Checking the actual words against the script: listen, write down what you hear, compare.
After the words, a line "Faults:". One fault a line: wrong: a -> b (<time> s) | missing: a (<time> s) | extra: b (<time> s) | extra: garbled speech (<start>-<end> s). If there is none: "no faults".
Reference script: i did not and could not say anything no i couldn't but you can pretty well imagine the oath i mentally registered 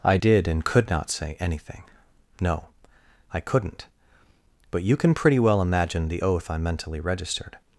i did and could not say anything no i couldn't but you can pretty well imagine the oath i mentally registered
Faults:
missing: not (0.5 s)